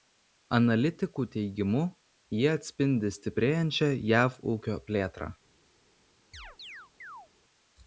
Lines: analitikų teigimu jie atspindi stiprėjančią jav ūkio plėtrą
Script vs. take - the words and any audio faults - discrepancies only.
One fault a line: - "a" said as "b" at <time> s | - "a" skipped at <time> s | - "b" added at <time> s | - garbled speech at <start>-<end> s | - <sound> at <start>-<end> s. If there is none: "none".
- chirp at 6.3-7.3 s